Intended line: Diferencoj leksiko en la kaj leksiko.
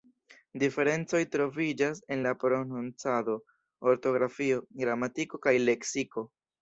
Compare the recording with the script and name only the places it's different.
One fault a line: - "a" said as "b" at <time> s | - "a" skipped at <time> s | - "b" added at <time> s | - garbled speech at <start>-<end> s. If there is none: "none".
- "leksiko" said as "troviĝas" at 1.4 s
- "prononcado ortografio gramatiko" added at 2.4 s